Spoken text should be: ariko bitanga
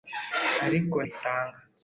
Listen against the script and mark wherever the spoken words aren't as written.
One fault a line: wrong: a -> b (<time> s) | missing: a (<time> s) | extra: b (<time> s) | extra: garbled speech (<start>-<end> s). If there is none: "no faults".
no faults